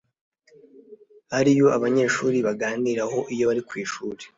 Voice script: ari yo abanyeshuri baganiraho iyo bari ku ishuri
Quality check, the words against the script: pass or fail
pass